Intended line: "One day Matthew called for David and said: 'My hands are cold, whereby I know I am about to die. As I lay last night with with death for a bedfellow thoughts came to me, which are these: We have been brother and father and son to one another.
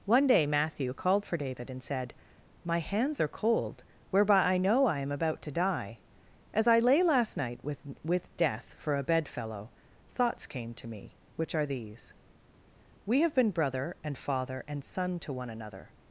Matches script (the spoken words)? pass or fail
pass